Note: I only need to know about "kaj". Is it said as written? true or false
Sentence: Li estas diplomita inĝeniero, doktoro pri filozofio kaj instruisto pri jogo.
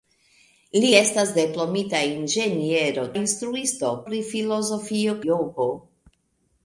false